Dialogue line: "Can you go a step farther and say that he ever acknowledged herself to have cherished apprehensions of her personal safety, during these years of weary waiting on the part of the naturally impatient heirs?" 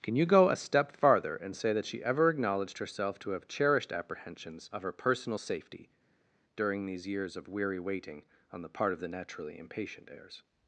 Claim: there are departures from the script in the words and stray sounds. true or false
true